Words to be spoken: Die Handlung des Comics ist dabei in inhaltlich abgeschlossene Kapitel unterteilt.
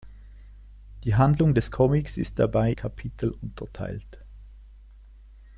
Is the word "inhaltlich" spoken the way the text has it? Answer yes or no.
no